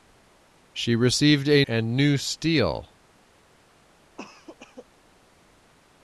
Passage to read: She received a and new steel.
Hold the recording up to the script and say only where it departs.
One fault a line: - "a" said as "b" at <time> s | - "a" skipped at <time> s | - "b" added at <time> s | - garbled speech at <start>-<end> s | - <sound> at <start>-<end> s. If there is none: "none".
- cough at 4.2-4.9 s